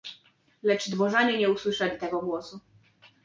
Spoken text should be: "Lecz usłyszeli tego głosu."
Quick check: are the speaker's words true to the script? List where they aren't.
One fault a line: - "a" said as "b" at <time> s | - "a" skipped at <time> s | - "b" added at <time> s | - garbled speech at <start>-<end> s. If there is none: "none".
- "dworzanie nie" added at 0.9 s